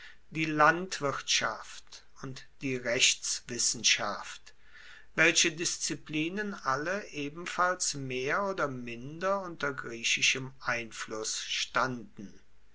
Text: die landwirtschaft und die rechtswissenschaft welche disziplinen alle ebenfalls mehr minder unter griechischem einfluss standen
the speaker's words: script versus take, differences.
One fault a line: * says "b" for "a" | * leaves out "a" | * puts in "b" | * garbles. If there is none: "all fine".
* puts in "oder"